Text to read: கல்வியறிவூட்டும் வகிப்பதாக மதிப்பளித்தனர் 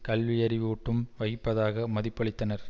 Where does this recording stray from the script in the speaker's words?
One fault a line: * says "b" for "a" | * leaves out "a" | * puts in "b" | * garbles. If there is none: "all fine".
all fine